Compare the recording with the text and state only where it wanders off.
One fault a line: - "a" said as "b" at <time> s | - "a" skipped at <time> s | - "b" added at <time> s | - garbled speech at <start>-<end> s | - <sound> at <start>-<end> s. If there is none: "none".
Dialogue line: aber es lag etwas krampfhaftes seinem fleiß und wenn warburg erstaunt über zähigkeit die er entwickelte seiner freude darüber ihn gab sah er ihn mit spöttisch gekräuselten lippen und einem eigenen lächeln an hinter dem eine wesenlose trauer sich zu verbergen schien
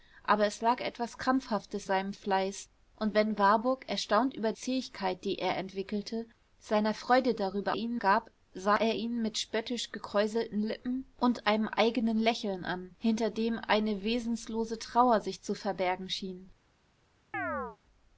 - chirp at 17.3-17.8 s